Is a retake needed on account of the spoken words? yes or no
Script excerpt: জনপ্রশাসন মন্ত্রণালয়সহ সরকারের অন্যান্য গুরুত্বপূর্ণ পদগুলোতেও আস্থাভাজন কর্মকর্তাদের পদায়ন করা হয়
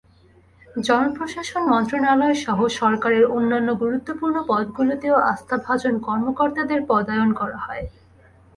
no